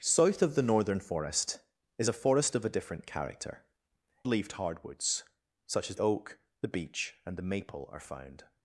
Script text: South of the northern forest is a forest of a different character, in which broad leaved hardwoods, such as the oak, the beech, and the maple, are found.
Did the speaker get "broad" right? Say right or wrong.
wrong